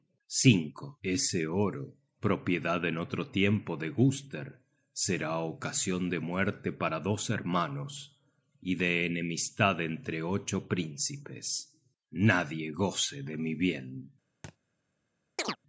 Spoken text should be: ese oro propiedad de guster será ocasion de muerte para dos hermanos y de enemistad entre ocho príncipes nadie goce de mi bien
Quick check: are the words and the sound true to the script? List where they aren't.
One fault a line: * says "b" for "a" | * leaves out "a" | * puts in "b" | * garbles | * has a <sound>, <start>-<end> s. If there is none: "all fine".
* puts in "en otro tiempo"
* has a thud, 14.4-14.6 s
* has a chirp, 15.4-15.6 s